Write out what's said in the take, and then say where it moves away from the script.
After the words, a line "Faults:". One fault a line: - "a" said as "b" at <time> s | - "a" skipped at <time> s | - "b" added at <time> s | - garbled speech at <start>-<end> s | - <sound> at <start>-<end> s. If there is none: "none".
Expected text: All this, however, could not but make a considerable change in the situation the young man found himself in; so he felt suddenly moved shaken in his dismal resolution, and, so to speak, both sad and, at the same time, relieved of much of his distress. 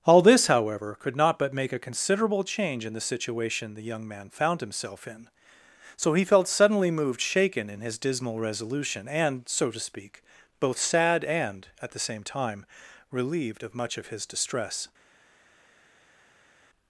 All this, however, could not but make a considerable change in the situation the young man found himself in; so he felt suddenly moved shaken in his dismal resolution, and, so to speak, both sad and, at the same time, relieved of much of his distress.
Faults:
none